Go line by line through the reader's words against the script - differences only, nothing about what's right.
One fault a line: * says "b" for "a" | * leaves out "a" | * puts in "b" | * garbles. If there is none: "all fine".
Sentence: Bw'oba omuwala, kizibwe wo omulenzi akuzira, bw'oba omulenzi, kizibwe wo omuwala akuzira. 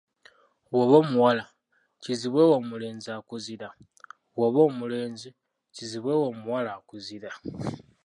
all fine